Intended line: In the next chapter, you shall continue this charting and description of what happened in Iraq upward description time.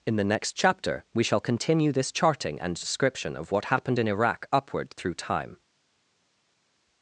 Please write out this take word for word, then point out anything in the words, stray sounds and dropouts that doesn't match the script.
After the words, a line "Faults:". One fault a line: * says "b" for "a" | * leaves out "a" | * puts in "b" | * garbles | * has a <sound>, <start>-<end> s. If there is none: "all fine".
In the next chapter, we shall continue this charting and description of what happened in Iraq upward through time.
Faults:
* says "we" for "you"
* says "through" for "description"